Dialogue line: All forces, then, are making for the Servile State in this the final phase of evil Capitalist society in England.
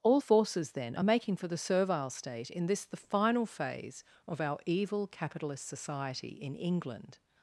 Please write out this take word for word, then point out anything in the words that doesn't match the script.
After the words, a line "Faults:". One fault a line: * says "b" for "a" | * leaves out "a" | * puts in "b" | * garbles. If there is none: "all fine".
All forces, then, are making for the Servile State in this the final phase of our evil Capitalist society in England.
Faults:
* puts in "our"